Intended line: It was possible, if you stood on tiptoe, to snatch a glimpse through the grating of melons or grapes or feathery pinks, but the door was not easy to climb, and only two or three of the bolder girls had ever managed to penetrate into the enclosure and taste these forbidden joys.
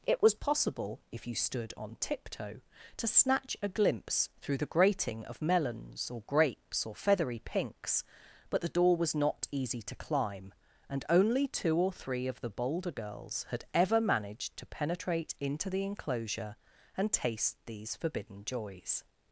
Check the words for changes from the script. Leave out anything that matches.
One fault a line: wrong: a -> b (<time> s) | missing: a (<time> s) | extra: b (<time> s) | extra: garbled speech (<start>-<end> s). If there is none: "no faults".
no faults